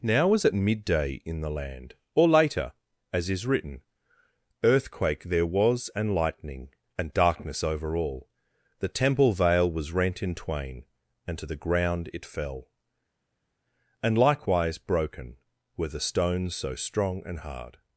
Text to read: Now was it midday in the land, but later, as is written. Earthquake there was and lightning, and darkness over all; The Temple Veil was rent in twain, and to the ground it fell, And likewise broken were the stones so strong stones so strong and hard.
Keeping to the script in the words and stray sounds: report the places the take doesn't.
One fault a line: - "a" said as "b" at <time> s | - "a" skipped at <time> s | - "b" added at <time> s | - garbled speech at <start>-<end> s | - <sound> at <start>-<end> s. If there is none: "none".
- "but" said as "or" at 2.1 s
- "stones so strong" skipped at 17.2 s